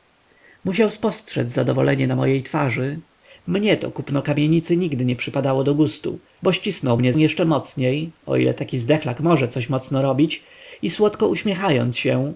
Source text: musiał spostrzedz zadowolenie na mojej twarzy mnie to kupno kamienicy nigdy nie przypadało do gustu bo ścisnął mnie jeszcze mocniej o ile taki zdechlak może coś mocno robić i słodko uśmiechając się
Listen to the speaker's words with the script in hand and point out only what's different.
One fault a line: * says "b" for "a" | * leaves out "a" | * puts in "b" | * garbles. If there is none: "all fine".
all fine